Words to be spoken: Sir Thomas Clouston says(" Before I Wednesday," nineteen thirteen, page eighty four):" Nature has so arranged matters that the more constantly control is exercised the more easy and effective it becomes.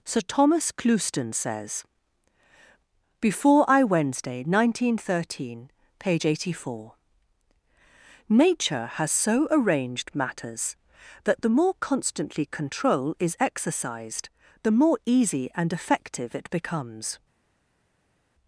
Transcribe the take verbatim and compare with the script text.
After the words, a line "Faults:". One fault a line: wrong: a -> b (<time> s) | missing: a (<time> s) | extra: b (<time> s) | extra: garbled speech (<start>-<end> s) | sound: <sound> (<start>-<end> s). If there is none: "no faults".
Sir Thomas Clouston says(" Before I Wednesday," nineteen thirteen, page eighty four):" Nature has so arranged matters that the more constantly control is exercised the more easy and effective it becomes.
Faults:
no faults